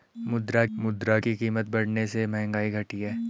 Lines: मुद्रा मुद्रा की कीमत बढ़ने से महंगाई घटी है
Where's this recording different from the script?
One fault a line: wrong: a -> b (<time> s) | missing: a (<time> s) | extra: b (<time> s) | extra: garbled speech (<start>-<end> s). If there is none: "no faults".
no faults